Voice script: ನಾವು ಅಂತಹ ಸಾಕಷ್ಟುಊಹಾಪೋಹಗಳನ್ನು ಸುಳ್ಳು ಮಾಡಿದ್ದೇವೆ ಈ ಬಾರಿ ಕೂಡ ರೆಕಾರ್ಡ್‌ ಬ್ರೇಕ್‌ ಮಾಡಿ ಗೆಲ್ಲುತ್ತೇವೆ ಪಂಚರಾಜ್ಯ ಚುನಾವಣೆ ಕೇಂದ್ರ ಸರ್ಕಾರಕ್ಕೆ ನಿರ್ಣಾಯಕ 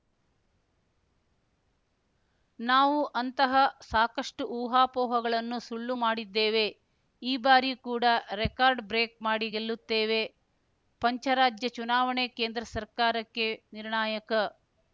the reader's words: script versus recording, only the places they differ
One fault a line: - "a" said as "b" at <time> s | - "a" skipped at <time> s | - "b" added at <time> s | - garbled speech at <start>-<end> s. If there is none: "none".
none